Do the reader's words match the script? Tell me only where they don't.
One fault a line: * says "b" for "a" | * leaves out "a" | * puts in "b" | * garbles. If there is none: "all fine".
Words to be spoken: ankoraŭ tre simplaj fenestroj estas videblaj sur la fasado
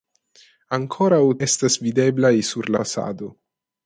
* leaves out "tre simplaj fenestroj"
* leaves out "la"